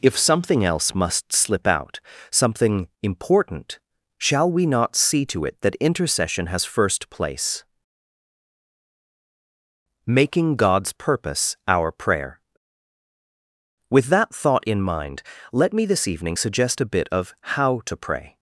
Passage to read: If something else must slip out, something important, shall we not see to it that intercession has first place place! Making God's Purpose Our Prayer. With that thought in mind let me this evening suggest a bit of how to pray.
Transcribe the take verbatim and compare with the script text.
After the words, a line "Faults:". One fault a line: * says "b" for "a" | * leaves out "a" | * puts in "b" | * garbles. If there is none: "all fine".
If something else must slip out, something important, shall we not see to it that intercession has first place! Making God's Purpose Our Prayer. With that thought in mind let me this evening suggest a bit of how to pray.
Faults:
* leaves out "place"